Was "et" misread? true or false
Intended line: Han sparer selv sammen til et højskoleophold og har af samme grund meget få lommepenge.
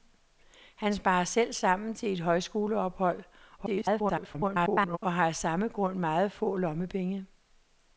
false